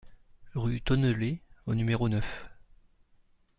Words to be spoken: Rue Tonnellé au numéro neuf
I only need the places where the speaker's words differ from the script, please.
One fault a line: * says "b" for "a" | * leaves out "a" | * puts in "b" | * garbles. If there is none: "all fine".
all fine